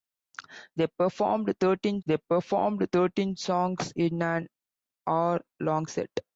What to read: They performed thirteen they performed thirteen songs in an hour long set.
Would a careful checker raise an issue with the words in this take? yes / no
no